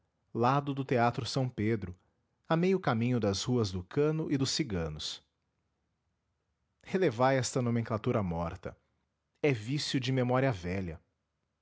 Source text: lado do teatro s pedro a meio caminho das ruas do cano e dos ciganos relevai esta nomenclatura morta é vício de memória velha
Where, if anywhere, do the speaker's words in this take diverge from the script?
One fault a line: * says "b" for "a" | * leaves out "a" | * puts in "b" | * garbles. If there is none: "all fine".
all fine